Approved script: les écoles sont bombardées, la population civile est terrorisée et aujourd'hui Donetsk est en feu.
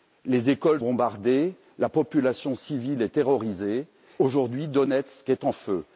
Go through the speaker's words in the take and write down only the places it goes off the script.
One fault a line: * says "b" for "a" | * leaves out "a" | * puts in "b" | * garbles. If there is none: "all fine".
* leaves out "sont"
* leaves out "et"